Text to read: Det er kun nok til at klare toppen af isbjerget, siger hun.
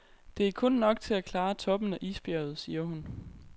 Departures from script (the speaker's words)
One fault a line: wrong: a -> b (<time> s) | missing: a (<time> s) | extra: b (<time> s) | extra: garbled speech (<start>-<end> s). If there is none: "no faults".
no faults